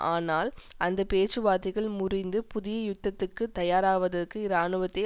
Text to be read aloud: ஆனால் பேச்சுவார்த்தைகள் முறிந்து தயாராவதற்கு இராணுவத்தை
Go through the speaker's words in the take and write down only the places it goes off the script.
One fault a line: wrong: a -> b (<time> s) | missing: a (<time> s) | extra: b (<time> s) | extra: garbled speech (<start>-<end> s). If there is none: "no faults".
extra: அந்த (0.8 s)
extra: புதிய யுத்தத்துக்கு (2.5 s)